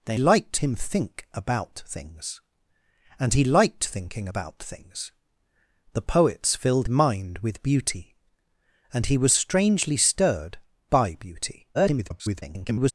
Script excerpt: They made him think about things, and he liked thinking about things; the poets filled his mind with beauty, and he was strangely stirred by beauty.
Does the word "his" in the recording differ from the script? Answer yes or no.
yes